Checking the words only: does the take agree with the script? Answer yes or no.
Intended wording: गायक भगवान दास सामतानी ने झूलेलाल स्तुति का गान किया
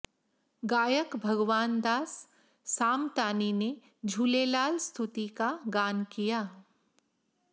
yes